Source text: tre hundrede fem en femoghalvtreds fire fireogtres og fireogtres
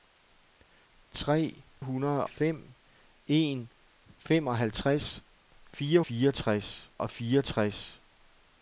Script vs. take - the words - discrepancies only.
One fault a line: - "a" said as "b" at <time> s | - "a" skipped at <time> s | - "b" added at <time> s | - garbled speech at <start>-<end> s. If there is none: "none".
none